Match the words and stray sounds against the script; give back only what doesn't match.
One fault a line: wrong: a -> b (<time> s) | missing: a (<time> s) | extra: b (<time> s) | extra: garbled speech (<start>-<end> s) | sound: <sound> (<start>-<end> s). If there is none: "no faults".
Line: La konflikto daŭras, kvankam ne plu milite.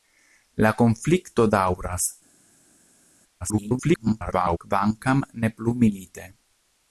extra: garbled speech (3.4-4.6 s)